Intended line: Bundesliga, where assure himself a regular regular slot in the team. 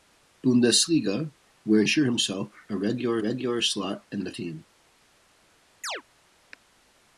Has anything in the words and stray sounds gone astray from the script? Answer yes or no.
yes